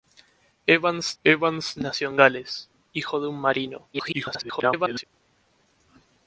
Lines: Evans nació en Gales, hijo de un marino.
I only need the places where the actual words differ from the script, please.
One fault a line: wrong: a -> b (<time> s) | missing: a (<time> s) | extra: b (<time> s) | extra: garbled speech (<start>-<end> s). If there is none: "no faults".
extra: evans (1.2 s)
extra: garbled speech (3.9-5.0 s)